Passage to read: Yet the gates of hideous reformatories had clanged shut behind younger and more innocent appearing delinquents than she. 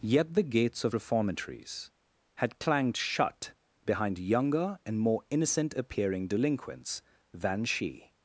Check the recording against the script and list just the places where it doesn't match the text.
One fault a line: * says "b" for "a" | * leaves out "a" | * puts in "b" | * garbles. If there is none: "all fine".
* leaves out "hideous"